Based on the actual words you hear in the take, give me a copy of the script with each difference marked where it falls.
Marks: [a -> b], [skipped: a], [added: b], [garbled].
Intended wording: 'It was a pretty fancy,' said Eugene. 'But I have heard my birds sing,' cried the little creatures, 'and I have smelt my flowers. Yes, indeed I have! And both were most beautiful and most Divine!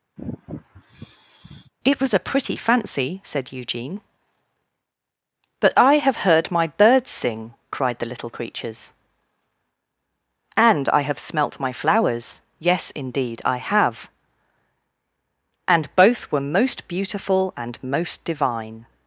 'It was a pretty fancy,' said Eugene. 'But I have heard my birds sing,' cried the little creatures, 'and I have smelt my flowers. Yes, indeed I have! And both were most beautiful and most Divine!